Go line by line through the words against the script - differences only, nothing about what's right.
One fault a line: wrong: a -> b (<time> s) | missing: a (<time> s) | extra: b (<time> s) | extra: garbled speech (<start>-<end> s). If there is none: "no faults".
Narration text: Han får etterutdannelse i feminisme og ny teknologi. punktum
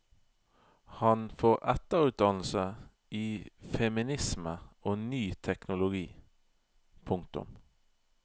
no faults